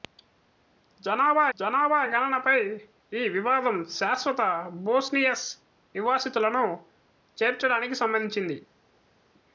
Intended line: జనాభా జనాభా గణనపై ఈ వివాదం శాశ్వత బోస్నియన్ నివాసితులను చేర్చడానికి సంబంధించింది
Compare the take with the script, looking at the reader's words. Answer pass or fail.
pass